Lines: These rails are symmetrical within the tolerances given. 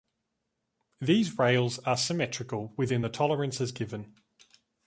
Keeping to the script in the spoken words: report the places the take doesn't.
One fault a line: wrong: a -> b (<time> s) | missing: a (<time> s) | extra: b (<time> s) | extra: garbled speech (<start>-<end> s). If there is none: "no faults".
no faults